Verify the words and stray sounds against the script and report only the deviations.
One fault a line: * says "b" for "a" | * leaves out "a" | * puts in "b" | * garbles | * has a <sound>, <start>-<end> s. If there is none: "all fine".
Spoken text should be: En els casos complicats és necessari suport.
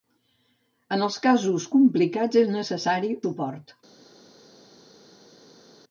all fine